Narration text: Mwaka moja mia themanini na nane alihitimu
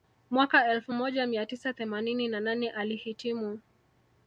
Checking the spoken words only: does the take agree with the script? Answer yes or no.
no